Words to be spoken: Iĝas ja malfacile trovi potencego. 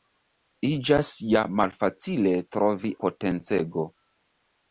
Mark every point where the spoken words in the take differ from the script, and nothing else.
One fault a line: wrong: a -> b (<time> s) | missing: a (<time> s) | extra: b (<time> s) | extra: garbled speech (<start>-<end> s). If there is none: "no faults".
no faults